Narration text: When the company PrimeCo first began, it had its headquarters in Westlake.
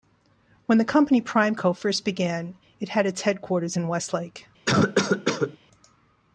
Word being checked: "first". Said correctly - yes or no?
yes